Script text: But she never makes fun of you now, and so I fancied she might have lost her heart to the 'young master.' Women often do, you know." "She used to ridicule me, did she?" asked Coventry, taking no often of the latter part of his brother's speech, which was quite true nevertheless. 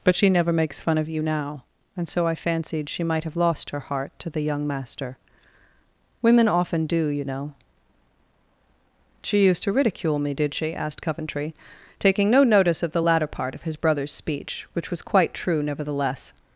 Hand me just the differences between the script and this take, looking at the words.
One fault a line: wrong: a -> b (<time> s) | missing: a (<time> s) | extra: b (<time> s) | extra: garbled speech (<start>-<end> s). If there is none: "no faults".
wrong: often -> notice (12.4 s)